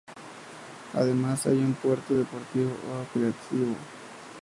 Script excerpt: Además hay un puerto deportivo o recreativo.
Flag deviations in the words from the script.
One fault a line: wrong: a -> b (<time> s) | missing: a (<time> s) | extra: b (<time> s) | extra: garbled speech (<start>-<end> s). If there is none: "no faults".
no faults